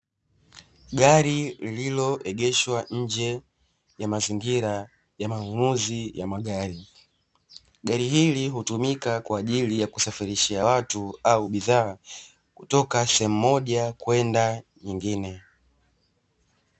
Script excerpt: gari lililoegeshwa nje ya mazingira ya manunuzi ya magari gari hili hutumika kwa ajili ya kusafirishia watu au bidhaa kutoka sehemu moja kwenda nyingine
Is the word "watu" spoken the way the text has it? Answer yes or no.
yes